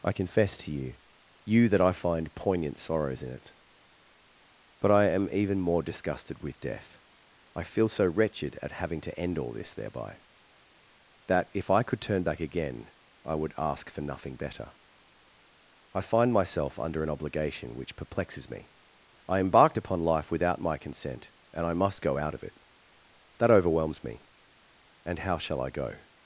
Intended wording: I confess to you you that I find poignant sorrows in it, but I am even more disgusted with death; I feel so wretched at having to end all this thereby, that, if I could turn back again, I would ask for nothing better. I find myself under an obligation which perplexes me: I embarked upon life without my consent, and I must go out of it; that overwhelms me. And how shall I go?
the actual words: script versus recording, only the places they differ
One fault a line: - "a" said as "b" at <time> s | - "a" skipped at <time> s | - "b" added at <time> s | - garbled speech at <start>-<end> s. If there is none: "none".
none